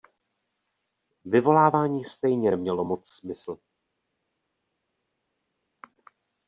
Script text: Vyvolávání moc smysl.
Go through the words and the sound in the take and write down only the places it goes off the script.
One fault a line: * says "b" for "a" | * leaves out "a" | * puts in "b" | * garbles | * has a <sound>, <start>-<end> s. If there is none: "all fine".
* puts in "stejně nemělo"